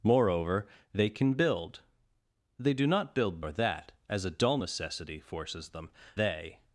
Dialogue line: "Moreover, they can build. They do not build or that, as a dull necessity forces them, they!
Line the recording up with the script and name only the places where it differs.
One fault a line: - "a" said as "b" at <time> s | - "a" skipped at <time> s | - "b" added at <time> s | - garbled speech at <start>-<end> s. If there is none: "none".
none